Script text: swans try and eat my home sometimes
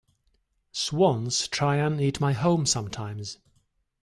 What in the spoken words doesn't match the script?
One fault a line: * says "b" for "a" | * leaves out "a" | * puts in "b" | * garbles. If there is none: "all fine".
all fine